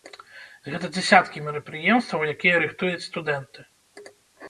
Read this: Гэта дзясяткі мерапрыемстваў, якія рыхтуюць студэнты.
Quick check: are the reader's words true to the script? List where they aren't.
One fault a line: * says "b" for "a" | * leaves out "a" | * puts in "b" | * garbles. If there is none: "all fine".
all fine